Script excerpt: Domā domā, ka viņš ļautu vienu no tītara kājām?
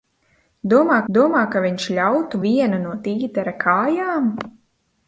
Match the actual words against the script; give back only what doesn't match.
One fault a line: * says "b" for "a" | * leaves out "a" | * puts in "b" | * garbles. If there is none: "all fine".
all fine